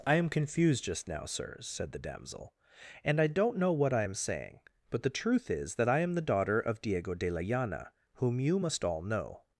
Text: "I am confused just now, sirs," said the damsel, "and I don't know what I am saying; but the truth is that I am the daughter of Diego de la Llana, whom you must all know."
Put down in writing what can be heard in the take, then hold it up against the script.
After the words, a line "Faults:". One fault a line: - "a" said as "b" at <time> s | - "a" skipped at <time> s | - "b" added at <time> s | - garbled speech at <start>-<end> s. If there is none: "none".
"I am confused just now, sirs," said the damsel, "and I don't know what I am saying; but the truth is that I am the daughter of Diego de la Llana, whom you must all know."
Faults:
none